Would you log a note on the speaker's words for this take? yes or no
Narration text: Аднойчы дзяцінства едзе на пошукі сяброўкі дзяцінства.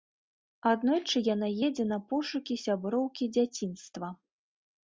yes